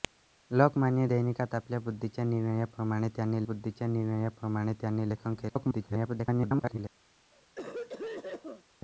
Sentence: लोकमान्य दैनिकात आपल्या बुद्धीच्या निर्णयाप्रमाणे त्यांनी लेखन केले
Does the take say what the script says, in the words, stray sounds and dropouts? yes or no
no